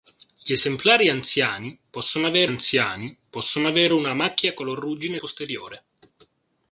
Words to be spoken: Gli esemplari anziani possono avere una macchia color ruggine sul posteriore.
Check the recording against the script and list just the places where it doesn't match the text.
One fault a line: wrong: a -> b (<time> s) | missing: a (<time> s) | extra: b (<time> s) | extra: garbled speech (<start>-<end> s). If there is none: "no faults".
extra: anziani possono avere (2.4 s)
missing: sul (5.2 s)